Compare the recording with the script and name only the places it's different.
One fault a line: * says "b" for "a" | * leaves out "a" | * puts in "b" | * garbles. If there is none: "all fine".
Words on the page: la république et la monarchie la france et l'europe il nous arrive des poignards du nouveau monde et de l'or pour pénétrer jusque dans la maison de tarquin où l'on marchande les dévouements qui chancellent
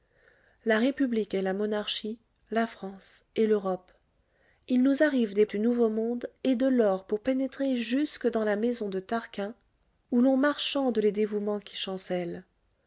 * leaves out "poignards"